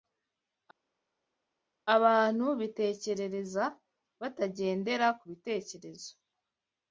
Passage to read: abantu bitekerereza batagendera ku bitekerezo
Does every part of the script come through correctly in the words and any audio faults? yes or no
yes